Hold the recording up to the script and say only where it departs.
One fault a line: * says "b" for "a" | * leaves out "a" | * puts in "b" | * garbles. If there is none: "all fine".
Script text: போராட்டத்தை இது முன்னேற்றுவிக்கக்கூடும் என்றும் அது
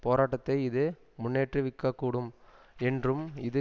* says "இது" for "அது"